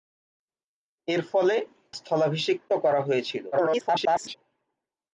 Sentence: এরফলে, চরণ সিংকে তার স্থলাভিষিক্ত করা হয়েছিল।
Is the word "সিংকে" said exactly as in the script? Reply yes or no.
no